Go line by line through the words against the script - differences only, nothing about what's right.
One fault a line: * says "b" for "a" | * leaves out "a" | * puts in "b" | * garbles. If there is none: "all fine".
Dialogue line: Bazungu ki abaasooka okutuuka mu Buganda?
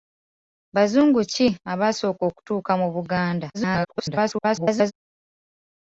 * garbles